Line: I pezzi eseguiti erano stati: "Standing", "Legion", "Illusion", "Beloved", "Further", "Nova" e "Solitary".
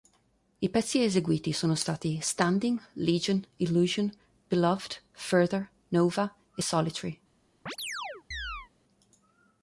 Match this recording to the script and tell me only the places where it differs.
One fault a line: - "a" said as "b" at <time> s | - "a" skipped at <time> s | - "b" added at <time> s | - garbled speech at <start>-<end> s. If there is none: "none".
- "erano" said as "sono" at 1.5 s